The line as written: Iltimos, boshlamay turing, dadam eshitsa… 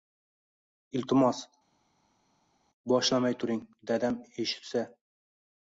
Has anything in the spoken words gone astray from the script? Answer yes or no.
no